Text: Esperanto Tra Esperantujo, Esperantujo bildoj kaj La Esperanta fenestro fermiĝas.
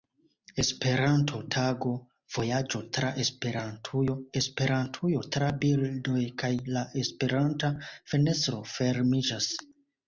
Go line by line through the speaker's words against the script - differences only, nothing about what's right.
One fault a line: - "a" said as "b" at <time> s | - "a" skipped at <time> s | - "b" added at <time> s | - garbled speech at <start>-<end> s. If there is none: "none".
- "Tago Vojaĝo" added at 1.6 s
- "tra" added at 5.4 s